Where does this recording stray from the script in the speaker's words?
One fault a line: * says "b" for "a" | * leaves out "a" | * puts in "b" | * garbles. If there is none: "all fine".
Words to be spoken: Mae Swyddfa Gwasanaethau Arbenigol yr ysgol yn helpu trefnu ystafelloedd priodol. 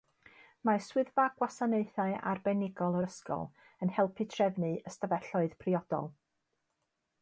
all fine